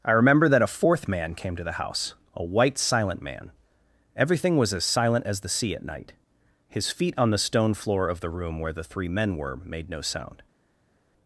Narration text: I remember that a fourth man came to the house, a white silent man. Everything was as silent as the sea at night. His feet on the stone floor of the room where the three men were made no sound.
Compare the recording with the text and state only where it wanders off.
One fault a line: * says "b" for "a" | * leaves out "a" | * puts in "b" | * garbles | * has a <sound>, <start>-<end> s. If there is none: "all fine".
all fine